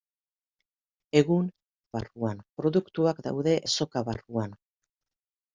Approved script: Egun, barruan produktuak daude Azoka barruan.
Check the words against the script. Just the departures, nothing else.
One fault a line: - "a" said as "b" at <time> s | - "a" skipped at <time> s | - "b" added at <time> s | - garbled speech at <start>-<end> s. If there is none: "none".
none